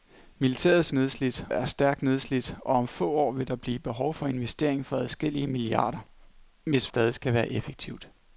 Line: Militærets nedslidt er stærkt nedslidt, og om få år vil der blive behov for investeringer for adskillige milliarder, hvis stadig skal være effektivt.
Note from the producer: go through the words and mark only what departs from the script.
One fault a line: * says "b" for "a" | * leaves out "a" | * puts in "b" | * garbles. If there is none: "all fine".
all fine